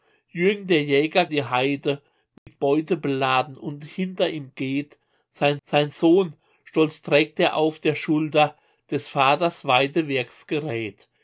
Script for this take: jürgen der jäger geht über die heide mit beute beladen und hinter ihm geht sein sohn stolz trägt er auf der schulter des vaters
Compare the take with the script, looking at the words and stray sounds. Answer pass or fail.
fail